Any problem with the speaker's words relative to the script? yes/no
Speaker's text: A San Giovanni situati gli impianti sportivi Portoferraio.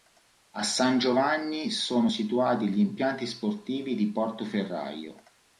yes